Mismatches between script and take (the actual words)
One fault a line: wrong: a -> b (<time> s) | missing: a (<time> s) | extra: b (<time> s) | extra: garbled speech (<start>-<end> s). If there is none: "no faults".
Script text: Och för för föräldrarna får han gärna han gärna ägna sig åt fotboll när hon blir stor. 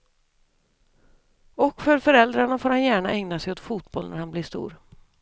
missing: för (2.0 s)
missing: han gärna (3.1 s)
wrong: hon -> han (4.2 s)